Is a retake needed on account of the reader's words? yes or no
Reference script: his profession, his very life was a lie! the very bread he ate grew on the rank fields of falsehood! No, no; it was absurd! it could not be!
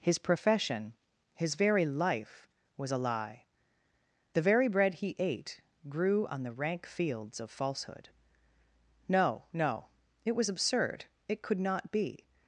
no